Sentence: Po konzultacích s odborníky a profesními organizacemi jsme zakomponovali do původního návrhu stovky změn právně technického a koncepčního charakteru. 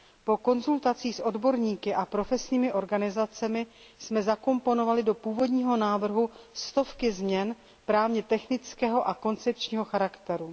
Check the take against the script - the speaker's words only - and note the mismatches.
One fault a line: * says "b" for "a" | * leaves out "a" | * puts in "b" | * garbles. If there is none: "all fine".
all fine